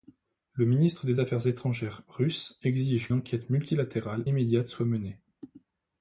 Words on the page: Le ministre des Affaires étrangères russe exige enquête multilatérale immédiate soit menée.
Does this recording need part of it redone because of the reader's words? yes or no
no